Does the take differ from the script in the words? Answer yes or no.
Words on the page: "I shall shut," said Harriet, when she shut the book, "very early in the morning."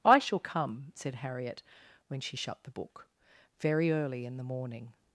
yes